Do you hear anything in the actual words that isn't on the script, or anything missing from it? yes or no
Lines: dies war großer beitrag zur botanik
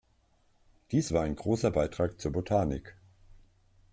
yes